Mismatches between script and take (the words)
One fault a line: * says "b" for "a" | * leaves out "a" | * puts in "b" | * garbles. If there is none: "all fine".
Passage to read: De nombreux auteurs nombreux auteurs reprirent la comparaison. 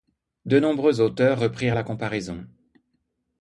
* leaves out "nombreux auteurs"